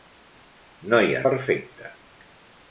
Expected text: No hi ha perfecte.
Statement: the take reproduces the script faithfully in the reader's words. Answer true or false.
true